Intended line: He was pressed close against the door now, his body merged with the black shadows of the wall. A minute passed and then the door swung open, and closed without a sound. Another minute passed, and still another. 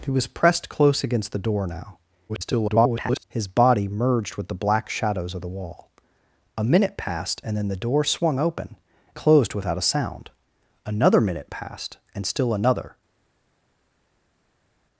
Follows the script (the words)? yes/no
no